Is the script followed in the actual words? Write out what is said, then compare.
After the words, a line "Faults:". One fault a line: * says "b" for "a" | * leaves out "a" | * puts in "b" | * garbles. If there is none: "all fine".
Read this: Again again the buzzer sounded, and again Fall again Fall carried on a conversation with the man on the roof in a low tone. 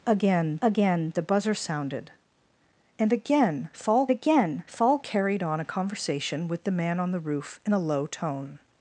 Again again the buzzer sounded, and again Fall again Fall carried on a conversation with the man on the roof in a low tone.
Faults:
all fine